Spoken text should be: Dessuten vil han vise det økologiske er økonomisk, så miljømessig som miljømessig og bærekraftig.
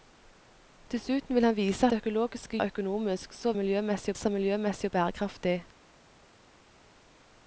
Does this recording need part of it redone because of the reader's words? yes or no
no